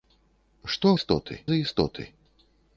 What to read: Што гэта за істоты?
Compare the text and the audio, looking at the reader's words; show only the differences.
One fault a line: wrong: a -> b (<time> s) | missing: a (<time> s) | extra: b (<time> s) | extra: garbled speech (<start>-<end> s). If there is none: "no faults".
wrong: гэта -> істоты (1.0 s)